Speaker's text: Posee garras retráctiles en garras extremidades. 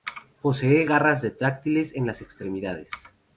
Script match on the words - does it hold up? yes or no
no